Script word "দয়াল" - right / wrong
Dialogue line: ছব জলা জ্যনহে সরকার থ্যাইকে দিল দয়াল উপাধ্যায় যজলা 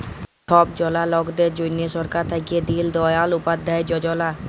right